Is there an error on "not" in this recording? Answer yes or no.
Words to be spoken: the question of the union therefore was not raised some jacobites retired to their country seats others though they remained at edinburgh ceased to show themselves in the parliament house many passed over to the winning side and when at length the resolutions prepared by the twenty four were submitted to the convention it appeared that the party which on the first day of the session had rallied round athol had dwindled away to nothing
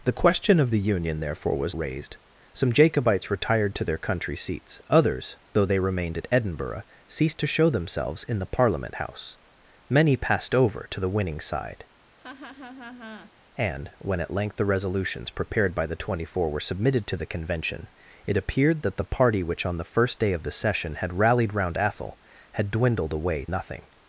yes